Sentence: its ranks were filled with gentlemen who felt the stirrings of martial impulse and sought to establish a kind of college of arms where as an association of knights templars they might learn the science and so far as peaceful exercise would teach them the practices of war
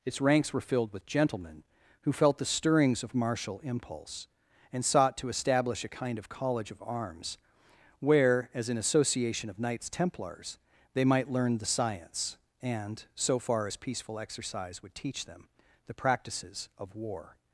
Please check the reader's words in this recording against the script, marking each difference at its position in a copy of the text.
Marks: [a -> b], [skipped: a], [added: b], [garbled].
its ranks were filled with gentlemen who felt the stirrings of martial impulse and sought to establish a kind of college of arms where as an association of knights templars they might learn the science and so far as peaceful exercise would teach them the practices of war